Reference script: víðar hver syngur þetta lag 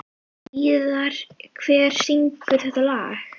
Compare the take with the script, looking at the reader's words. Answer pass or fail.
pass